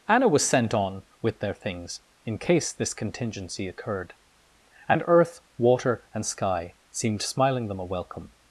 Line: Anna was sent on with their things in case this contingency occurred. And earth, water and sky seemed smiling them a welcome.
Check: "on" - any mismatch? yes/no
no